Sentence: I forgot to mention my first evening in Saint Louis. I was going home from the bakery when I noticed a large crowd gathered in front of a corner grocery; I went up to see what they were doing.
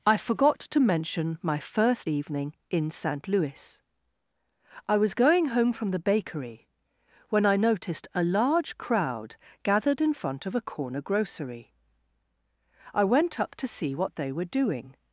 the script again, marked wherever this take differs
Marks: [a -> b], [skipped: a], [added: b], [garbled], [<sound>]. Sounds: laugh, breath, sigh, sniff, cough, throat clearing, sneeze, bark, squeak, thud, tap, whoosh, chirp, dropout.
I forgot to mention my first evening in Saint Louis. I was going home from the bakery when I noticed a large crowd gathered in front of a corner grocery; I went up to see what they were doing.